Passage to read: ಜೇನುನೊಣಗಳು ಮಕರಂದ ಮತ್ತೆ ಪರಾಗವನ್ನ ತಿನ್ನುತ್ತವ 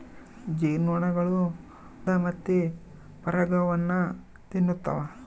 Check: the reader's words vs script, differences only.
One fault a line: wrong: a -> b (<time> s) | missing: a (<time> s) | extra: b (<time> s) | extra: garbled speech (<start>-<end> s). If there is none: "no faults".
missing: ಮಕರಂದ (1.4 s)